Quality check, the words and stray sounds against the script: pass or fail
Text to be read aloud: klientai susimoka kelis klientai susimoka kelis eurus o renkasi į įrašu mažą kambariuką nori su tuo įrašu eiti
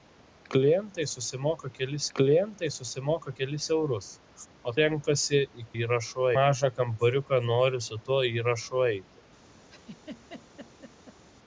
fail